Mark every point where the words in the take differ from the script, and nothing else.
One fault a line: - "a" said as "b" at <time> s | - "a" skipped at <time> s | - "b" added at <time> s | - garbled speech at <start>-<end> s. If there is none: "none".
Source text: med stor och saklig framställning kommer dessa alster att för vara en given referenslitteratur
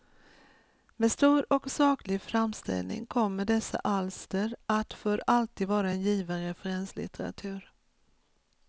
- "alltid" added at 5.3 s